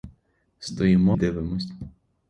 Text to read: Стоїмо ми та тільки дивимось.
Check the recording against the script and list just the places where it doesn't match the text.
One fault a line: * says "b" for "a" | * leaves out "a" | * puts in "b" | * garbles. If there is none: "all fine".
* leaves out "ми та тільки"